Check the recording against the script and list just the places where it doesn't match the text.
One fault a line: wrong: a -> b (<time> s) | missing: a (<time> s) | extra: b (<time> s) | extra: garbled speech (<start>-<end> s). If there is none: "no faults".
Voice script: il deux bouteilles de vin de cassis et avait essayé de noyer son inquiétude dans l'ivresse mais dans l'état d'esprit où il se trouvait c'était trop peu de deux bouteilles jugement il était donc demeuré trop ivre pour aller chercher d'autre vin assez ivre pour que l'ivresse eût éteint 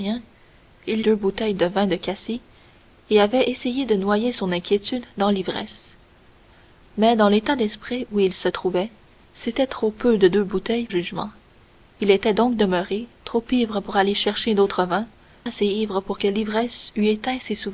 no faults